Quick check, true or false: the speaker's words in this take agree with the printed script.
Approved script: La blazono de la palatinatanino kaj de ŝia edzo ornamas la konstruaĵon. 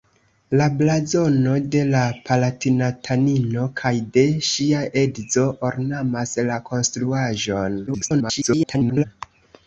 false